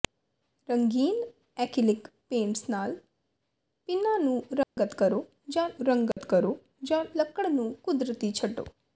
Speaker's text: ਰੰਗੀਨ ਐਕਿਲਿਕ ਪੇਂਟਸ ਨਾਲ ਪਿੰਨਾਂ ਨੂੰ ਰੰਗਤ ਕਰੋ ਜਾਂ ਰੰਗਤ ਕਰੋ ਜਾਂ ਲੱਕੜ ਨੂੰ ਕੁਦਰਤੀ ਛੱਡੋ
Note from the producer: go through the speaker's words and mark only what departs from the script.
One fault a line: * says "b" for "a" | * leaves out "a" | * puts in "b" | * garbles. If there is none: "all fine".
all fine